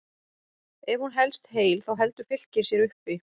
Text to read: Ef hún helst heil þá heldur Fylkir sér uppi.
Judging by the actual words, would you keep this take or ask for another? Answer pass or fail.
pass